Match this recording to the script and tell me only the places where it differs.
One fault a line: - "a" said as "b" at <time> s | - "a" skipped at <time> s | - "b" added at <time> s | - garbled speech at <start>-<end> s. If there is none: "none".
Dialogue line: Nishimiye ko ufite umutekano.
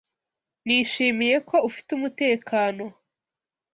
none